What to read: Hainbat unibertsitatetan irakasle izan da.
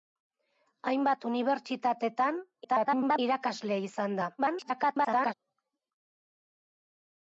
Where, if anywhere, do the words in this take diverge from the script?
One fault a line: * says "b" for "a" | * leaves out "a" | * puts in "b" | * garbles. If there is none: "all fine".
* garbles
* garbles